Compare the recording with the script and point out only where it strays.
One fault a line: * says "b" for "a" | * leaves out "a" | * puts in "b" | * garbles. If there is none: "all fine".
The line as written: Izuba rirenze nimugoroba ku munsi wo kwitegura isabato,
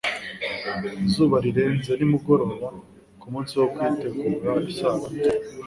all fine